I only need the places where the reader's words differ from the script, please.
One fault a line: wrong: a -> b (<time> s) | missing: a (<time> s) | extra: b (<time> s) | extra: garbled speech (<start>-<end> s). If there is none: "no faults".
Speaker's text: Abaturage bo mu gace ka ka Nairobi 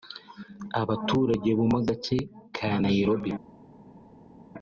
missing: ka (2.7 s)